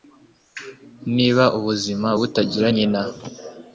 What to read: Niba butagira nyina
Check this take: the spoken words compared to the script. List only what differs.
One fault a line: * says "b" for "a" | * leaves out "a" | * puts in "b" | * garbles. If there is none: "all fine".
* puts in "ubuzima"